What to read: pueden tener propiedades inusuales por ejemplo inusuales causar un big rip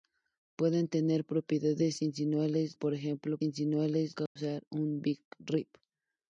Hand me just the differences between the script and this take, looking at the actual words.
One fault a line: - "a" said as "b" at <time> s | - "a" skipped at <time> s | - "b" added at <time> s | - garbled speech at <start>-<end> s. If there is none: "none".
none